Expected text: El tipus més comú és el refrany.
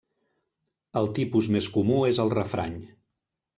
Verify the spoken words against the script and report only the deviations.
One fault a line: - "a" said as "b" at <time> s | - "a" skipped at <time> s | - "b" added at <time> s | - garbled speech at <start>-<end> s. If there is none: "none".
none